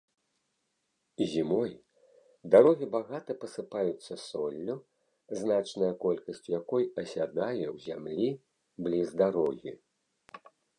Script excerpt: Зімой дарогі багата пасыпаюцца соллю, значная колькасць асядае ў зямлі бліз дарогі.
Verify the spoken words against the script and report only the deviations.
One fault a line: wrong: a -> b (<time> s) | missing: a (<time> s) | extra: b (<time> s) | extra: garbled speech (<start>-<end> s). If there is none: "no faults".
extra: якой (6.6 s)